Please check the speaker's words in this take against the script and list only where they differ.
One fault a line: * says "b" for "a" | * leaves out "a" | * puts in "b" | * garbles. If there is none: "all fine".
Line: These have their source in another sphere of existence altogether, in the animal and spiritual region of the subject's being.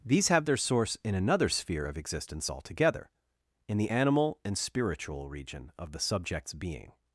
all fine